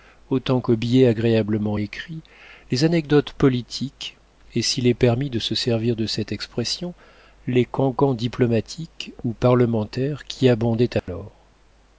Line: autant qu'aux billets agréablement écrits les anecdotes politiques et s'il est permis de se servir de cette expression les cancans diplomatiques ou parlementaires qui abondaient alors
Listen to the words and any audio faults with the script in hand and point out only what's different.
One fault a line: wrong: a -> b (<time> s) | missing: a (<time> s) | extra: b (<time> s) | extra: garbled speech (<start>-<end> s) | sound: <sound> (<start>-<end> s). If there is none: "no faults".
sound: dropout (11.0-11.1 s)